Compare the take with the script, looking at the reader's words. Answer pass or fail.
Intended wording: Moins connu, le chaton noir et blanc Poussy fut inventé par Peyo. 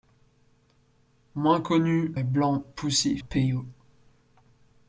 fail